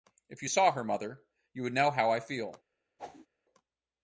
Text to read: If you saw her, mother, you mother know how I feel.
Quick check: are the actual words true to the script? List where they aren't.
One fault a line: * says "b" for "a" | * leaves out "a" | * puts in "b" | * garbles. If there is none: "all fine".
* says "would" for "mother"